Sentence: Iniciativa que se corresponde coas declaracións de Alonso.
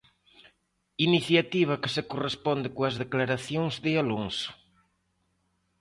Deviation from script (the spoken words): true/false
false